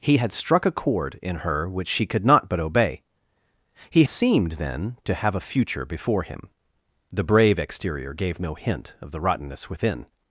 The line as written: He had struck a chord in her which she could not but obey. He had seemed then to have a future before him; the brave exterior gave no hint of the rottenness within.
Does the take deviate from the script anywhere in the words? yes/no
yes